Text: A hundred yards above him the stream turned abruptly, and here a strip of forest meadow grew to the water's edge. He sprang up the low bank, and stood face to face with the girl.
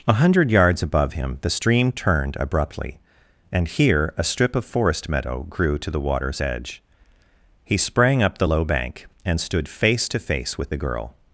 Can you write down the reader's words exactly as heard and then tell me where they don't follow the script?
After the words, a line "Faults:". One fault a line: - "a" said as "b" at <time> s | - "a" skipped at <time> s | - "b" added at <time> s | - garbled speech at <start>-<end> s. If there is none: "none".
A hundred yards above him the stream turned abruptly, and here a strip of forest meadow grew to the water's edge. He sprang up the low bank, and stood face to face with the girl.
Faults:
none